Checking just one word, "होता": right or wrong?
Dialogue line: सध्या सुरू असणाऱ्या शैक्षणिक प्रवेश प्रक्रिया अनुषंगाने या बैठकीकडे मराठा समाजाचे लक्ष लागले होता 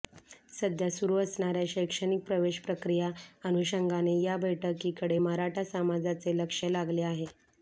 wrong